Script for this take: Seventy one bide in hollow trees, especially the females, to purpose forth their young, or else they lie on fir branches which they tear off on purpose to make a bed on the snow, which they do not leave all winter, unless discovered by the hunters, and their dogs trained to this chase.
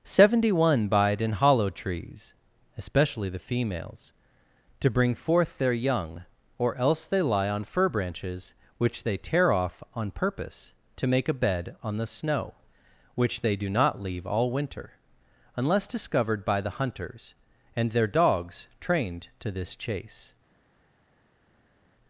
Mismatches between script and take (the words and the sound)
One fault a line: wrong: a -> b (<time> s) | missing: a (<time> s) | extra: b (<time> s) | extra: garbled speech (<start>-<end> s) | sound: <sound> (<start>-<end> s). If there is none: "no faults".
wrong: purpose -> bring (4.9 s)